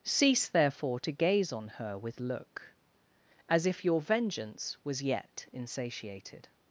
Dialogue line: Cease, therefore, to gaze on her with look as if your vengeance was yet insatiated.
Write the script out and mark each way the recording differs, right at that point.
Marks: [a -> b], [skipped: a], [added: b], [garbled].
Cease, therefore, to gaze on her with look as if your vengeance was yet insatiated.